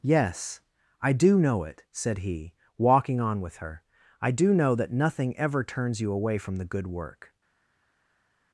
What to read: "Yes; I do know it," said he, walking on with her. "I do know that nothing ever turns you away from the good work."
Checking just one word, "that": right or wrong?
right